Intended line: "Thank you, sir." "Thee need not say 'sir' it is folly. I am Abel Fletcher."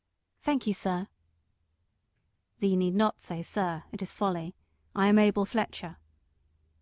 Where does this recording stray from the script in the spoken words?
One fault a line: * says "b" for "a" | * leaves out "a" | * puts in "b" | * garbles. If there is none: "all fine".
all fine